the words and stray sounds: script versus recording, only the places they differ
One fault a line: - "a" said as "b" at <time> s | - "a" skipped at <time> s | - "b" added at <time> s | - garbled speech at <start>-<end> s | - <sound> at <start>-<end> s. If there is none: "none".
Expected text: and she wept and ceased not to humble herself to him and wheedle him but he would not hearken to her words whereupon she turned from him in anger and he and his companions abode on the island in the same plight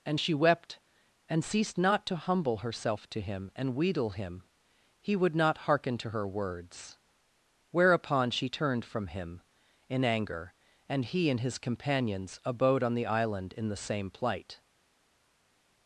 - "but" skipped at 4.4 s